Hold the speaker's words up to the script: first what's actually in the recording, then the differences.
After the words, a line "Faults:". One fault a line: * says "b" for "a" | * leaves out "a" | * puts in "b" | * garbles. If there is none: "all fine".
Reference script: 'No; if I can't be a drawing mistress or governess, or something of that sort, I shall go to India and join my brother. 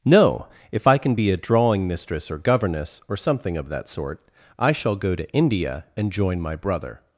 'No; if I can be a drawing mistress or governess, or something of that sort, I shall go to India and join my brother.
Faults:
* says "can" for "can't"